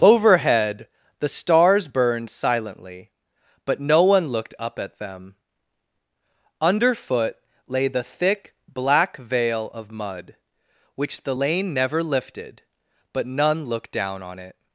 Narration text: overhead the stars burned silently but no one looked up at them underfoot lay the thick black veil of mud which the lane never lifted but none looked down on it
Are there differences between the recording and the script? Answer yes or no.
no